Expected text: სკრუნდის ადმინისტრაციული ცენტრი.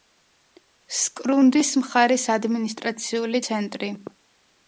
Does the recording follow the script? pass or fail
fail